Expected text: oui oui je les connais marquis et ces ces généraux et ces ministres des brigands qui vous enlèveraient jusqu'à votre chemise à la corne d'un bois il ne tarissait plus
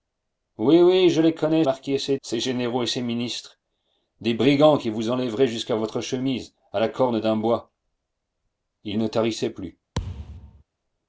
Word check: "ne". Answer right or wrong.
right